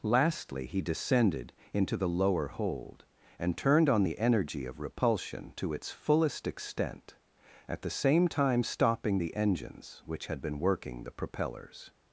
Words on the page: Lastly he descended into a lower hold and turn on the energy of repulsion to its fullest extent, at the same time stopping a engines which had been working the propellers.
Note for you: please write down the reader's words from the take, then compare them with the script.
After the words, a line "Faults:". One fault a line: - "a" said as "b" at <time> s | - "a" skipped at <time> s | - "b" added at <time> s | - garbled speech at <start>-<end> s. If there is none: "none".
Lastly he descended into the lower hold and turned on the energy of repulsion to its fullest extent, at the same time stopping the engines which had been working the propellers.
Faults:
- "a" said as "the" at 1.9 s
- "turn" said as "turned" at 3.6 s
- "a" said as "the" at 9.2 s